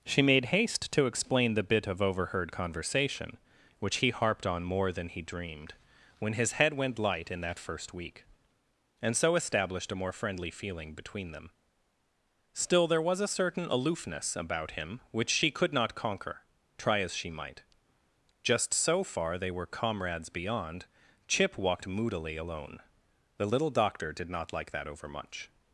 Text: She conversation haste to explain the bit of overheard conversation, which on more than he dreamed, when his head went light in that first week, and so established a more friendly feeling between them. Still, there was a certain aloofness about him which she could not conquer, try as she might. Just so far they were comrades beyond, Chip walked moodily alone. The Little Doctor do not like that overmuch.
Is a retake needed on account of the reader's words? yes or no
yes